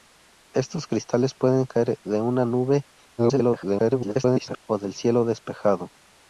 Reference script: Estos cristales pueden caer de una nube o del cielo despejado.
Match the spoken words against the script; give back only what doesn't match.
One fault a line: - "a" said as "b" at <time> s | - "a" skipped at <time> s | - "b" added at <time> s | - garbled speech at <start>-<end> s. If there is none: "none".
- garbled speech at 3.2-4.6 s